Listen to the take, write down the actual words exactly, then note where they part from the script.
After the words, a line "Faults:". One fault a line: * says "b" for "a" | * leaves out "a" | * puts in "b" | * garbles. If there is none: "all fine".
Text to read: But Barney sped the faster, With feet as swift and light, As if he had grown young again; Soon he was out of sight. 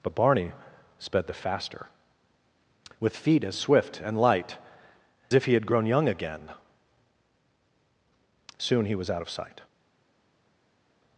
But Barney sped the faster, With feet as swift and light, If he had grown young again; Soon he was out of sight.
Faults:
* leaves out "As"